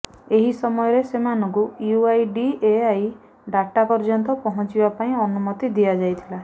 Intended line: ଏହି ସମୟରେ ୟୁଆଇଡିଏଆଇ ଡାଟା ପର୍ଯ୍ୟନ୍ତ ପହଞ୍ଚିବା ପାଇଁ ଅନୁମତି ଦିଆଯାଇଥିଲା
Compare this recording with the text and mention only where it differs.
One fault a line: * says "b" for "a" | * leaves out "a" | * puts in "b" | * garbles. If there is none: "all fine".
* puts in "ସେମାନଙ୍କୁ"